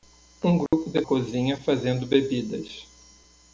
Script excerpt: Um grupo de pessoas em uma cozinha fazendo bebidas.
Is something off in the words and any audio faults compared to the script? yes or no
yes